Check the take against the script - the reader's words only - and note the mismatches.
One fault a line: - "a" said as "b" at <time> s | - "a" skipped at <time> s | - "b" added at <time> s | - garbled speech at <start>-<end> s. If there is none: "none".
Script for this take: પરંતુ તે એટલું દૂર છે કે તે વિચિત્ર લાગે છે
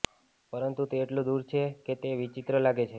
none